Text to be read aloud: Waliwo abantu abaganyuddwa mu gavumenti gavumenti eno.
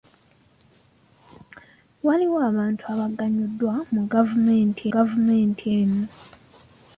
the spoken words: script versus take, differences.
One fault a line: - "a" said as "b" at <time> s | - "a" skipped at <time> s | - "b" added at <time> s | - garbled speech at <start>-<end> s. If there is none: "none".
none